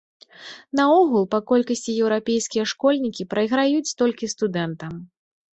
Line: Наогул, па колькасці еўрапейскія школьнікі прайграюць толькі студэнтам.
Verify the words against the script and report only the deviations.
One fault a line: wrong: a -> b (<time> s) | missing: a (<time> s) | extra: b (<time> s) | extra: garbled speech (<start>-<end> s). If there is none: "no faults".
no faults